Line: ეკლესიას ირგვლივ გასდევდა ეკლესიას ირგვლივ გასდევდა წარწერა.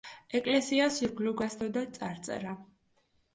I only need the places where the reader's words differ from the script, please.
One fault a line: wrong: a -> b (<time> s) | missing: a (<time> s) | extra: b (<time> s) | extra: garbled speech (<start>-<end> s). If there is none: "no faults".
missing: ეკლესიას ირგვლივ გასდევდა (1.9 s)